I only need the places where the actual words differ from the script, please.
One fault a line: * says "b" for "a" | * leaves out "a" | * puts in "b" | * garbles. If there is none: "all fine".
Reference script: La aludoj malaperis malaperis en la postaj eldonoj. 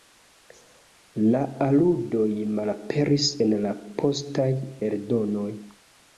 * leaves out "malaperis"